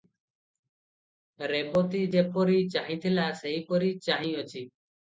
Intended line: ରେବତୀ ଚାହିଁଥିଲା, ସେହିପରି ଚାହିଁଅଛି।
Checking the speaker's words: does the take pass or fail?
fail